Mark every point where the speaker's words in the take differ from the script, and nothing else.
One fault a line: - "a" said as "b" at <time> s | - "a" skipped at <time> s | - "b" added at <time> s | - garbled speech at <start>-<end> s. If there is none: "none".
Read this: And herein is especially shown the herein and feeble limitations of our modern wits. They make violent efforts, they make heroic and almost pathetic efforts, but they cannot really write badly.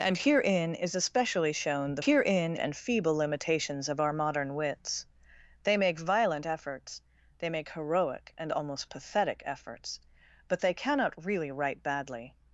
none